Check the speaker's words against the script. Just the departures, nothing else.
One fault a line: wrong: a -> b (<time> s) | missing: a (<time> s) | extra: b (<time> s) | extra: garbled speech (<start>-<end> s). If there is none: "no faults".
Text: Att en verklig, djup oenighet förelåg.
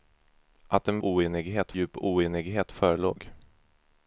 wrong: verklig -> oenighet (1.0 s)